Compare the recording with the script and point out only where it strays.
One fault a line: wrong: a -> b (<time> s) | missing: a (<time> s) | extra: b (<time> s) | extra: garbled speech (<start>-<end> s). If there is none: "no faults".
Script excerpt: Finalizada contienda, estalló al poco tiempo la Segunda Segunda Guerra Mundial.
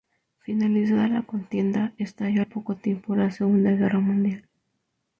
extra: la (1.1 s)
missing: Segunda (3.7 s)